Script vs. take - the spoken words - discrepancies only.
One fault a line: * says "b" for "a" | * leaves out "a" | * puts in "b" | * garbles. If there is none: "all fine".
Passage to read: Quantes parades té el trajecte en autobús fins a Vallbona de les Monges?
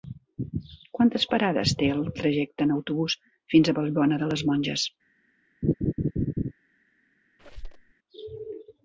all fine